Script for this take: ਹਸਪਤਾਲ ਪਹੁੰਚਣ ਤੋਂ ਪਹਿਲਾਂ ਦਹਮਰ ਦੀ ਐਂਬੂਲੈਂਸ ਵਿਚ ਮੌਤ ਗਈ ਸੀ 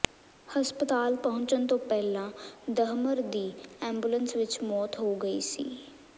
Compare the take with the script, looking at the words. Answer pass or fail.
fail